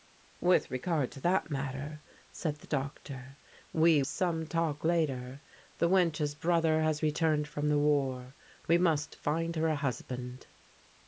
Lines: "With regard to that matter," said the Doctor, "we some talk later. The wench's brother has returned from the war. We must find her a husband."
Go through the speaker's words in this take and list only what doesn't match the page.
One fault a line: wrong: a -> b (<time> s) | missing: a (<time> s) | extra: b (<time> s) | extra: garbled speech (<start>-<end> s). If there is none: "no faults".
no faults